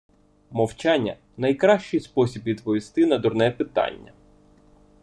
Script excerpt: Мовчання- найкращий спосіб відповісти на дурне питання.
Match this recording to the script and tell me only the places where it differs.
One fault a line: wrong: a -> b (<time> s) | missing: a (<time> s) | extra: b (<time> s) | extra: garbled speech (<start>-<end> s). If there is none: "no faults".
no faults